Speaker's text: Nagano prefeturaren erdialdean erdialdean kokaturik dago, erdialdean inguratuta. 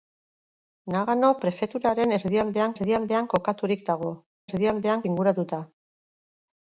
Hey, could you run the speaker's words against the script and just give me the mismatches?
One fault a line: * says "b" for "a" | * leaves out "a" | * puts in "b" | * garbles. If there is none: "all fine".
all fine